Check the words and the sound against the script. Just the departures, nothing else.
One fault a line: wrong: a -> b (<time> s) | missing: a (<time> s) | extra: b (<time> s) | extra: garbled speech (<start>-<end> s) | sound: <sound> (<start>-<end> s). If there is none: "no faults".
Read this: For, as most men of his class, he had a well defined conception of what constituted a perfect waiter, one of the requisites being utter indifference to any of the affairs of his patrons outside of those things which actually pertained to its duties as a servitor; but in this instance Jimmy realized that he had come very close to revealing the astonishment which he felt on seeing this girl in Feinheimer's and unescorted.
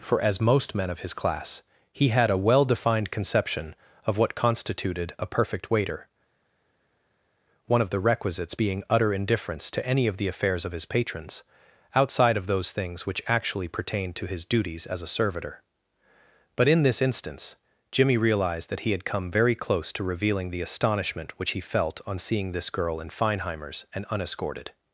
wrong: its -> his (14.3 s)